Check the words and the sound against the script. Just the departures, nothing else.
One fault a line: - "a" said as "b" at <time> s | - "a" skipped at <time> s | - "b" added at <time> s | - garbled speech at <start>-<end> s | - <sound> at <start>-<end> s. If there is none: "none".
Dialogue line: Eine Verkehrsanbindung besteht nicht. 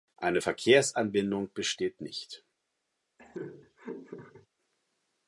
- laugh at 3.2-4.5 s